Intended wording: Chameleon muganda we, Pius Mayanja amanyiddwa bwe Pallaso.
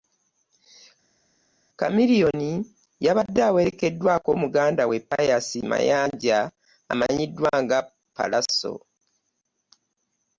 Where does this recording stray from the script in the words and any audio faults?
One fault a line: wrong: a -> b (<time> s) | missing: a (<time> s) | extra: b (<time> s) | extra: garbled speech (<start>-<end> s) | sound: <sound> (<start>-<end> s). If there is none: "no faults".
extra: yabadde awerekeddwako (3.0 s)
wrong: bwe -> nga (7.6 s)